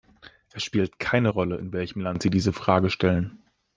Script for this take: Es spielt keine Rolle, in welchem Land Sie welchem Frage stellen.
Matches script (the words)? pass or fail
fail